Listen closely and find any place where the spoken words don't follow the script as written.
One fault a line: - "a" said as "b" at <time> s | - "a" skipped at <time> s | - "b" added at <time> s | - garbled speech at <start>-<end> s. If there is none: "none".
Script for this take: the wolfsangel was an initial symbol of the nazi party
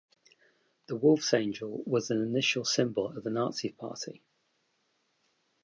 none